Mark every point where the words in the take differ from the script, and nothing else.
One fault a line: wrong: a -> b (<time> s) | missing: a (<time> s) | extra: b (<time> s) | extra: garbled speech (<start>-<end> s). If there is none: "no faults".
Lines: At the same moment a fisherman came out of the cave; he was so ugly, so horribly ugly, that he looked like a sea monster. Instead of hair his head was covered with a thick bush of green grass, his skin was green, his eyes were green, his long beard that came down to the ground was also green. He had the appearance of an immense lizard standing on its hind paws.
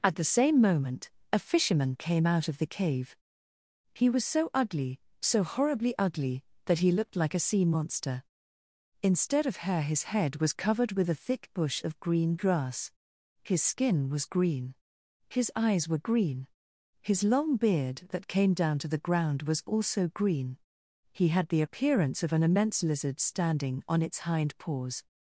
no faults